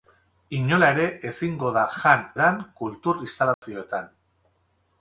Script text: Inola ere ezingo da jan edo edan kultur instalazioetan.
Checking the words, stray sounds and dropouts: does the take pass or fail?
fail